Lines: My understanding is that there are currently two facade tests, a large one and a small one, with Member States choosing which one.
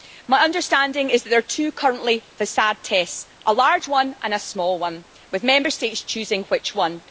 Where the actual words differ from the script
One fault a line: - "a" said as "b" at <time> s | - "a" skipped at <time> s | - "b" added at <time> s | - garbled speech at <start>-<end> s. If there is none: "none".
none